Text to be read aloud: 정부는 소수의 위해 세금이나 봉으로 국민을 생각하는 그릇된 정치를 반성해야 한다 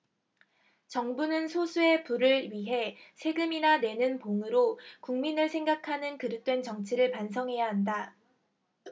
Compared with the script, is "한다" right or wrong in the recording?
right